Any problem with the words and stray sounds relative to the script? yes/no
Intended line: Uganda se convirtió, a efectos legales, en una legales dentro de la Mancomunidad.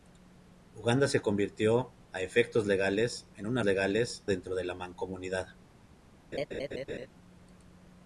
yes